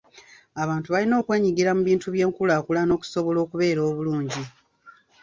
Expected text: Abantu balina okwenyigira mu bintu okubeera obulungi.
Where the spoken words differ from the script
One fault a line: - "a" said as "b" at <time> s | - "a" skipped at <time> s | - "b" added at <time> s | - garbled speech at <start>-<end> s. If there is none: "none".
- "by'enkulaakulana okusobola" added at 2.1 s